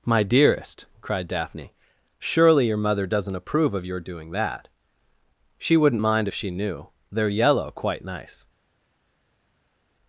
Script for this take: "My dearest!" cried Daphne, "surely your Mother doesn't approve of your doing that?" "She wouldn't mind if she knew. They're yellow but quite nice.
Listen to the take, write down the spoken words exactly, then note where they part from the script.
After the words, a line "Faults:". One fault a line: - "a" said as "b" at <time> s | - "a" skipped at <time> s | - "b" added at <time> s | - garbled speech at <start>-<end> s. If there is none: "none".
"My dearest!" cried Daphne, "surely your Mother doesn't approve of your doing that?" "She wouldn't mind if she knew. They're yellow quite nice.
Faults:
- "but" skipped at 7.7 s